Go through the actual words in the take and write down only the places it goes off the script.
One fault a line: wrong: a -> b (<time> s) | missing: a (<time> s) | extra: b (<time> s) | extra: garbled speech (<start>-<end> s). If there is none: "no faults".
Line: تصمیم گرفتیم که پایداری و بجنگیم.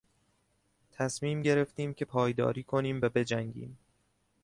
extra: کنیم (2.6 s)